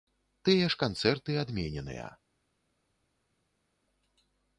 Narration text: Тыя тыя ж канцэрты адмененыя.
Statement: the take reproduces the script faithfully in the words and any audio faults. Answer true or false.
false